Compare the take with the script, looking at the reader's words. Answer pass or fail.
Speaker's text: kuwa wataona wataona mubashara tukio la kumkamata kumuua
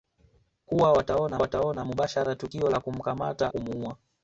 pass